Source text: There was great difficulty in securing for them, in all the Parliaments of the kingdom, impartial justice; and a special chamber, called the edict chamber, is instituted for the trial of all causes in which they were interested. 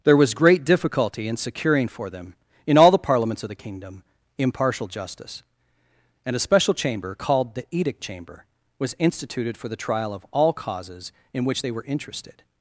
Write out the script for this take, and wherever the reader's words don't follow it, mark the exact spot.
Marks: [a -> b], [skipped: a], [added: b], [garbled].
There was great difficulty in securing for them, in all the Parliaments of the kingdom, impartial justice; and a special chamber, called the edict chamber, [is -> was] instituted for the trial of all causes in which they were interested.